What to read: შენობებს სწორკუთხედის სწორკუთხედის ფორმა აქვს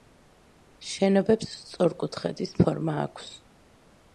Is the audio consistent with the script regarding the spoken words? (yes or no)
no